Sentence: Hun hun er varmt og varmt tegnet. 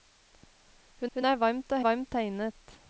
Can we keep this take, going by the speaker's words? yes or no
yes